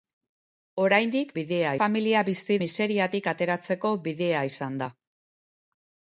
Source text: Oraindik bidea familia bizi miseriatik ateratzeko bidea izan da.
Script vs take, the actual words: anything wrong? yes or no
no